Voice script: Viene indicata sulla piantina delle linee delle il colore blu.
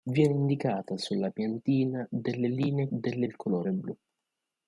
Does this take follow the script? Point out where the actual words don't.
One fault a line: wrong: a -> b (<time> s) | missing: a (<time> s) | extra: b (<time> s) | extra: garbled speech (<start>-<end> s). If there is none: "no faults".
no faults